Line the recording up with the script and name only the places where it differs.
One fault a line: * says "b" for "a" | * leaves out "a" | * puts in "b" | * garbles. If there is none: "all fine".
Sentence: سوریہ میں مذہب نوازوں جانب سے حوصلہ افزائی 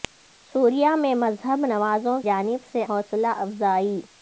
all fine